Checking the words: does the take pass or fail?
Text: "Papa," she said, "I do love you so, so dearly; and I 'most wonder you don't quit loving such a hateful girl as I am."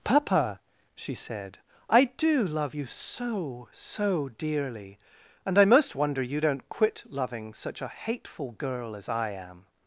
pass